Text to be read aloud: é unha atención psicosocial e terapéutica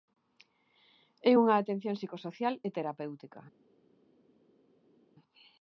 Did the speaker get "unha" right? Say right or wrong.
right